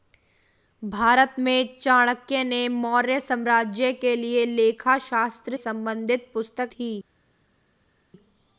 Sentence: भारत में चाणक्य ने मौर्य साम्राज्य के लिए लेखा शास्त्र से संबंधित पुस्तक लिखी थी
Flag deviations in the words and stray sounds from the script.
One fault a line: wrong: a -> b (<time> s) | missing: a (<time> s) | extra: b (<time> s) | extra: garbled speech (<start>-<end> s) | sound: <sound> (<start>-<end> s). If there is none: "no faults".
missing: से (5.6 s)
missing: लिखी (6.7 s)